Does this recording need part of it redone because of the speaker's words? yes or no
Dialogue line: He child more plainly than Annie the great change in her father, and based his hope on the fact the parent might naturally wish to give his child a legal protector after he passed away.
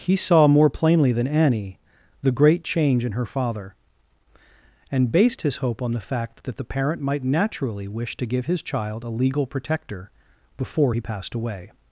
yes